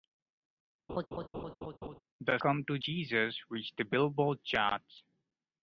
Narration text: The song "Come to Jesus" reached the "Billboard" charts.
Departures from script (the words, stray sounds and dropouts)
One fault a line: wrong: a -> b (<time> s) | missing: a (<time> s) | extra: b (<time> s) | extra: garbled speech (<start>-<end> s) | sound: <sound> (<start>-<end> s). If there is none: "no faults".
sound: laugh (0.9-2.0 s)
missing: song (2.4 s)